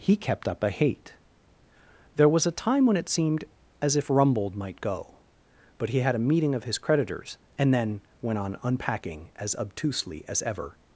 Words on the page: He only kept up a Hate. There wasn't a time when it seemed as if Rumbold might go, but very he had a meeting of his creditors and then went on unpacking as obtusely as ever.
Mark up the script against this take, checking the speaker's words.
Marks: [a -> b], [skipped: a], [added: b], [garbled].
He [skipped: only] kept up a Hate. There [wasn't -> was] a time when it seemed as if Rumbold might go, but [skipped: very] he had a meeting of his creditors and then went on unpacking as obtusely as ever.